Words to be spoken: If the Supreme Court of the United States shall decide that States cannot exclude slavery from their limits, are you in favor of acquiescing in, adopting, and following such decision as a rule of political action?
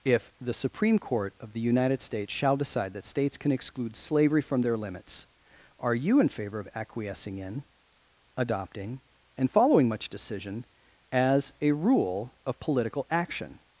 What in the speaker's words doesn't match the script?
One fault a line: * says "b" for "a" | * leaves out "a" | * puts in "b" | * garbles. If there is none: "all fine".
* says "can" for "cannot"
* says "much" for "such"